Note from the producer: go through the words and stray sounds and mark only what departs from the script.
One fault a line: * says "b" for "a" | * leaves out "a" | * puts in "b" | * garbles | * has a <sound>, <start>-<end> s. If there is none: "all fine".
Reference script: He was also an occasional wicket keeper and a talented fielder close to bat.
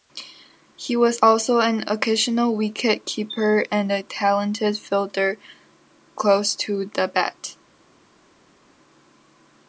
* puts in "the"